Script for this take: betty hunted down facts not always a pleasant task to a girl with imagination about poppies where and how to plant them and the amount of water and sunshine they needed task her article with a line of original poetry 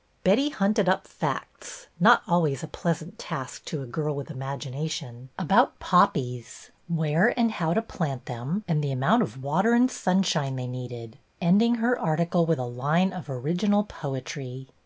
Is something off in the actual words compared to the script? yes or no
yes